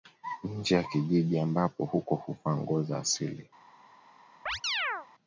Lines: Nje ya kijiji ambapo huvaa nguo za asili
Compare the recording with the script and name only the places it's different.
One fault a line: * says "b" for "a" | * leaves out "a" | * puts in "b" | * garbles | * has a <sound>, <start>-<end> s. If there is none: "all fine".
* puts in "huko"
* has a chirp, 4.5-5.1 s